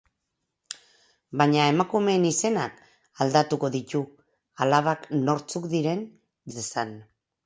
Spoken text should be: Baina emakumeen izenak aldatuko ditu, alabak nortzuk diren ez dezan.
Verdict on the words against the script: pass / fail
pass